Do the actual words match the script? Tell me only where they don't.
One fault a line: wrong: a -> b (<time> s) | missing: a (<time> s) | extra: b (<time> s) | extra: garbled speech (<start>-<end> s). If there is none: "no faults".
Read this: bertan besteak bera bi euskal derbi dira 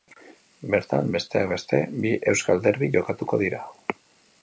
wrong: bera -> beste (1.5 s)
extra: jokatuko (3.0 s)